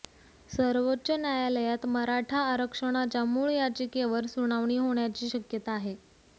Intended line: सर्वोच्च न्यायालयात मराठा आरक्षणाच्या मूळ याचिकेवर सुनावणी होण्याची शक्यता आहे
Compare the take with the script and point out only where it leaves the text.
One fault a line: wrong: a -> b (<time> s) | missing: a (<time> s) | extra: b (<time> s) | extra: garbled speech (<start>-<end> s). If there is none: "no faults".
no faults